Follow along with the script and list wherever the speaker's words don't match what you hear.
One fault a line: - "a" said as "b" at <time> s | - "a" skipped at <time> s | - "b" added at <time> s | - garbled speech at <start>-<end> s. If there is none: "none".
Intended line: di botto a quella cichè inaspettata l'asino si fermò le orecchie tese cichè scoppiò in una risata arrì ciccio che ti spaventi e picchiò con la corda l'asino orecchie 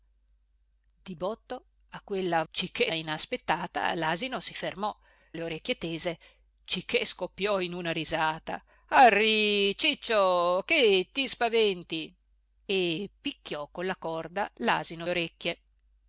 none